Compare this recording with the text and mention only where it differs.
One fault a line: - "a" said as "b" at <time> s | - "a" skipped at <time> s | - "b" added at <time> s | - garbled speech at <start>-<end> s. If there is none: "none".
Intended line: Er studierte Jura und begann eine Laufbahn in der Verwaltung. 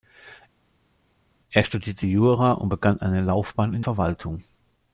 - "der" skipped at 3.8 s